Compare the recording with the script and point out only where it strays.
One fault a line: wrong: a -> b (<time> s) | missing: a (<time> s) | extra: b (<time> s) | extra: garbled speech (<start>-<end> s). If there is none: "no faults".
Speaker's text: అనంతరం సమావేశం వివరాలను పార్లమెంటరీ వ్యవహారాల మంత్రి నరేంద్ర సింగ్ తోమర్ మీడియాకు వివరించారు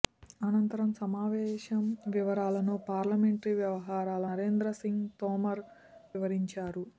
missing: మంత్రి (4.3 s)
missing: మీడియాకు (5.6 s)